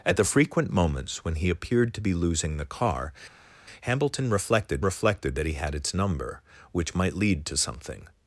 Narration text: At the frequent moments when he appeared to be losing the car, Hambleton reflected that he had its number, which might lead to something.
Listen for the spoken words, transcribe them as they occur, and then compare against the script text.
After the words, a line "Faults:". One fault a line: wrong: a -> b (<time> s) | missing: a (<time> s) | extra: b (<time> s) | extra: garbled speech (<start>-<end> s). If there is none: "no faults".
At the frequent moments when he appeared to be losing the car, Hambleton reflected reflected that he had its number, which might lead to something.
Faults:
extra: reflected (4.8 s)